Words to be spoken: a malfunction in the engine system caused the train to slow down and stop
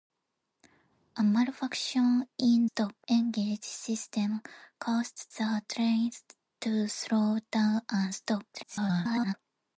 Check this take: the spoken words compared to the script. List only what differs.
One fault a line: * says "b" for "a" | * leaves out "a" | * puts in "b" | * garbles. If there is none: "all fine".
* says "stop" for "the"
* garbles